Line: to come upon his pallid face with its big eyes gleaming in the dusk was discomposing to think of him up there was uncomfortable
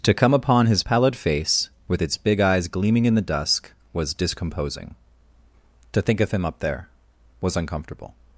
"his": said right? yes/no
yes